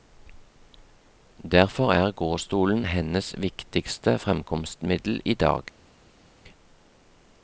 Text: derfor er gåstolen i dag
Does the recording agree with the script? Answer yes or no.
no